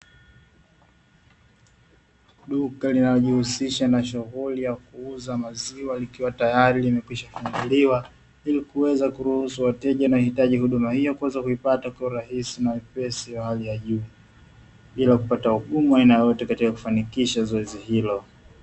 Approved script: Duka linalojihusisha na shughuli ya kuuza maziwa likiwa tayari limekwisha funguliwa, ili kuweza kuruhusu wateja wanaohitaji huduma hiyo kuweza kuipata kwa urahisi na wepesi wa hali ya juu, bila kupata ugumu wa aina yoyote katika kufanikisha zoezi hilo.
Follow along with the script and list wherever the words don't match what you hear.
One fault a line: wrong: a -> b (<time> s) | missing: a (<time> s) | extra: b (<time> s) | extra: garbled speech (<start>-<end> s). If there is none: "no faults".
no faults